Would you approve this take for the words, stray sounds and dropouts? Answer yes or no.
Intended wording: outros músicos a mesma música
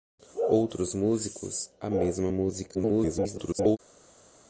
no